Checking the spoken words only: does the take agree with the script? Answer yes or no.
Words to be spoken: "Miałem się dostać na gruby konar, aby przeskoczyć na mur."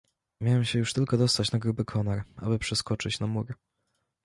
no